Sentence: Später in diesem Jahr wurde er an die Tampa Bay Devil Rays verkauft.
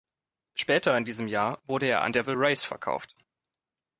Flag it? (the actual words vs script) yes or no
yes